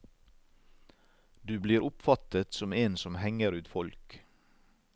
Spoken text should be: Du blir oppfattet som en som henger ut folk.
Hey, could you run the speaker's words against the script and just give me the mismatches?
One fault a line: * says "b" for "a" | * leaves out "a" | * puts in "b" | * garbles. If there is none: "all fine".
all fine